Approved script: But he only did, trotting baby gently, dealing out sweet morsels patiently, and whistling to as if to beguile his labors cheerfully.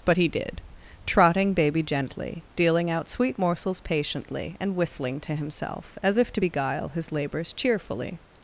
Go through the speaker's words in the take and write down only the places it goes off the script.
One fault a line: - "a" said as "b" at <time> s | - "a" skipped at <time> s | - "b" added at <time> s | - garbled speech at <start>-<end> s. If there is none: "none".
- "only" skipped at 0.3 s
- "himself" added at 5.4 s